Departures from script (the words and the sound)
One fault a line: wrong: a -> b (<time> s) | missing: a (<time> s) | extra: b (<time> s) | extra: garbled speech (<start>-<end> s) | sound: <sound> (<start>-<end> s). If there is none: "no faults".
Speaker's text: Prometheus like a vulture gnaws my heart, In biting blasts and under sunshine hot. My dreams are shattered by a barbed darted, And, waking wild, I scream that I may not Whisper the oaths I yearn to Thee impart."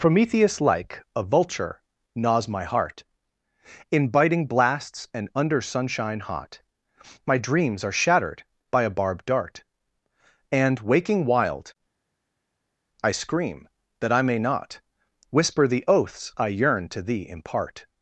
wrong: darted -> dart (9.2 s)